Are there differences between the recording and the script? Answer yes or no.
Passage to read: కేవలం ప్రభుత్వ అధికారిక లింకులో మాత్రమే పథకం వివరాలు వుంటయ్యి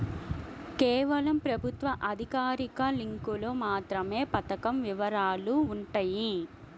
no